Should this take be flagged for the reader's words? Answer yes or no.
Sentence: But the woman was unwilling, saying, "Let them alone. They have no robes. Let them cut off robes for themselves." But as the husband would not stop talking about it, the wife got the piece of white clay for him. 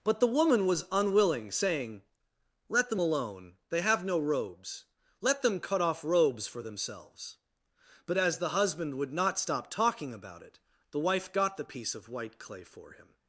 no